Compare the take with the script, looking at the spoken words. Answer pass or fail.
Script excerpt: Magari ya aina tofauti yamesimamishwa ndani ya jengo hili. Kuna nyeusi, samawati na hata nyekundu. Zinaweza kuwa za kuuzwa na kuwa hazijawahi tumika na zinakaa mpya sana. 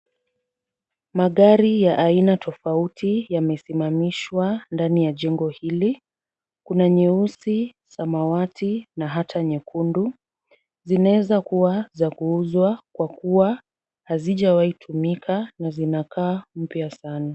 fail